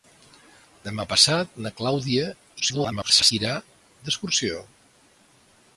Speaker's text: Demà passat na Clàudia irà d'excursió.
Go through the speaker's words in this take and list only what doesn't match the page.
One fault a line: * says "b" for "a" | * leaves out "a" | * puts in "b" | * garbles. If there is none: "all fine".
* garbles